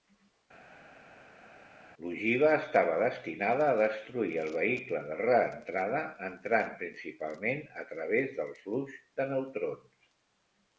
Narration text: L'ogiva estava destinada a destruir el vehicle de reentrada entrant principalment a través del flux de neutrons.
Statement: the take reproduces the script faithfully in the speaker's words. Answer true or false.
true